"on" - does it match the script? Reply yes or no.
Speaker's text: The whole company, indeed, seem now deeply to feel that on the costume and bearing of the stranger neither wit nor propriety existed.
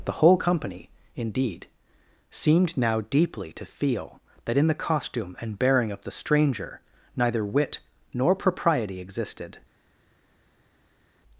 no